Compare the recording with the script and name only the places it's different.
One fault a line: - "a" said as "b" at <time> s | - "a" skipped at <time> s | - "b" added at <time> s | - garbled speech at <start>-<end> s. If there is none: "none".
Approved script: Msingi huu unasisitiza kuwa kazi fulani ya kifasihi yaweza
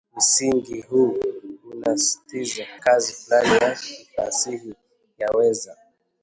- "kuwa" skipped at 2.6 s